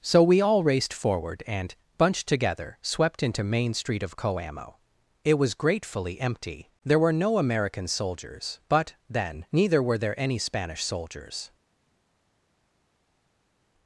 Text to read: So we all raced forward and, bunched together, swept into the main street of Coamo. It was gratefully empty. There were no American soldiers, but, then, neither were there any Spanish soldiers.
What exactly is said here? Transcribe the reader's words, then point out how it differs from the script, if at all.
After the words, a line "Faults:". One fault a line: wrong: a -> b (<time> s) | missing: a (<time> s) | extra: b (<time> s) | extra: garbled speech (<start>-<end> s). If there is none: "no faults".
So we all raced forward and, bunched together, swept into main street of Coamo. It was gratefully empty. There were no American soldiers, but, then, neither were there any Spanish soldiers.
Faults:
missing: the (3.4 s)